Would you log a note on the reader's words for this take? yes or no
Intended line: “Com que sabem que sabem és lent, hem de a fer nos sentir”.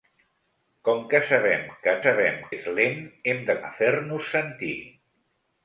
no